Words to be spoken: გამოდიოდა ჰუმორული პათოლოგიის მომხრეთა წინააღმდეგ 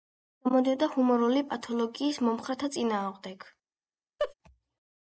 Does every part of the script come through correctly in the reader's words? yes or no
yes